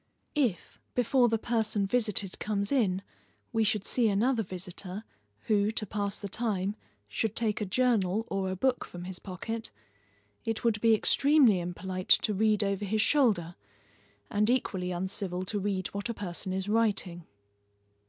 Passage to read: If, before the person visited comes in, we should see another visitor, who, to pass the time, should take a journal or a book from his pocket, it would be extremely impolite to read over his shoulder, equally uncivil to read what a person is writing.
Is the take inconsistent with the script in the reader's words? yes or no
yes